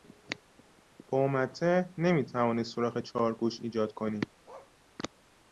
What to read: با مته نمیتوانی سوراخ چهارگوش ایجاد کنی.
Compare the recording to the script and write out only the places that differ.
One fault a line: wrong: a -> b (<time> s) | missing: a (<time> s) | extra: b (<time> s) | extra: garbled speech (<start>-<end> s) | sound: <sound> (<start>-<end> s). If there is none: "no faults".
sound: bark (4.4-4.7 s)